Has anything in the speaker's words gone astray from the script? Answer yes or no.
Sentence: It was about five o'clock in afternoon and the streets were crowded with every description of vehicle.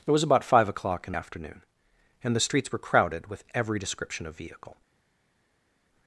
no